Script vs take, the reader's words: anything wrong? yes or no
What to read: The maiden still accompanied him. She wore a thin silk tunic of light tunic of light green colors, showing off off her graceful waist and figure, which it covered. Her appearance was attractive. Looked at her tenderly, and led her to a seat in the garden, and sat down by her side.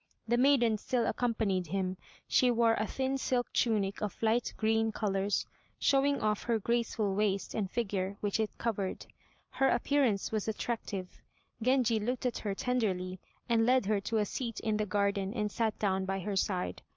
yes